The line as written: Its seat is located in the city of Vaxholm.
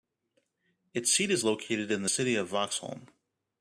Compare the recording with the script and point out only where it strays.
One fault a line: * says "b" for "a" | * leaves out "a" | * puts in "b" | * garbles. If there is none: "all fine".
all fine